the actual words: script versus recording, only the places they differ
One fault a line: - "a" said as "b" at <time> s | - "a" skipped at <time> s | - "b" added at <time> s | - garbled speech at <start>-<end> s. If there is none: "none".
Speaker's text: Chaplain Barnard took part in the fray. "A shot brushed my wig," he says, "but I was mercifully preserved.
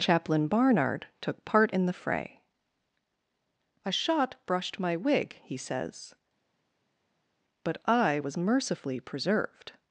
none